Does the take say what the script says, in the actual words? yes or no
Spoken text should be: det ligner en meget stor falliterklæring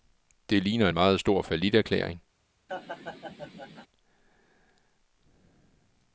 yes